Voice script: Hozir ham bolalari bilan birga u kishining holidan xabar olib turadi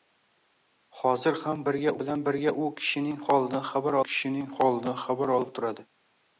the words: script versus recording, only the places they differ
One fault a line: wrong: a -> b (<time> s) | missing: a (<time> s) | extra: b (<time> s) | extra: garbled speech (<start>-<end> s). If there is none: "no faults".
wrong: bolalari -> birga (1.7 s)
extra: kishining holidan xabar (4.1 s)